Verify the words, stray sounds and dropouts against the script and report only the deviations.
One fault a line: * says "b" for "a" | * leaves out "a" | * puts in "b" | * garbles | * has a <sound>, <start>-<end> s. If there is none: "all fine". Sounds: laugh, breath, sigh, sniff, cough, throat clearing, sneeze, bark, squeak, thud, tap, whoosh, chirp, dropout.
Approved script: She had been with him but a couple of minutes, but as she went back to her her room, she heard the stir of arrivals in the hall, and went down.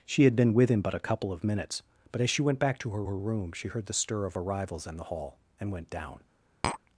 * has a tap, 6.6-6.8 s